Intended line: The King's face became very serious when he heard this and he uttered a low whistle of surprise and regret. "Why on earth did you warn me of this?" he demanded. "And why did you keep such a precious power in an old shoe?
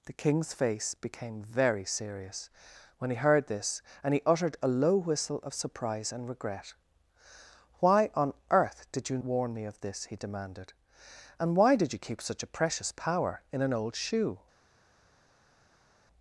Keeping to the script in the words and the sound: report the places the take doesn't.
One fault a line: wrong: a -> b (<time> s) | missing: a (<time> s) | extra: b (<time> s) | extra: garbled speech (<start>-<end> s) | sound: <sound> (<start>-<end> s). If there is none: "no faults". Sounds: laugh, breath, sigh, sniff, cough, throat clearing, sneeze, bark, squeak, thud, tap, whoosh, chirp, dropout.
no faults